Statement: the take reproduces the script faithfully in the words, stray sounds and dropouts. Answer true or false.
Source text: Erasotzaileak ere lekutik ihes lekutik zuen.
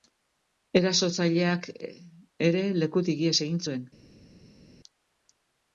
false